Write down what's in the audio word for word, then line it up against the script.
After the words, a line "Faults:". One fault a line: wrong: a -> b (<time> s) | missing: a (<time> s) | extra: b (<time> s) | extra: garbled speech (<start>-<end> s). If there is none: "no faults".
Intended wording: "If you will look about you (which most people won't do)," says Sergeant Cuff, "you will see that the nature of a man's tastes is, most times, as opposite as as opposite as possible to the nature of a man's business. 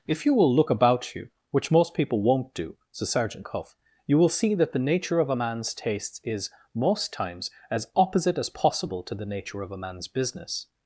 "If you will look about you (which most people won't do)," says Sergeant Cuff, "you will see that the nature of a man's tastes is, most times, as opposite as possible to the nature of a man's business.
Faults:
missing: as opposite as (8.5 s)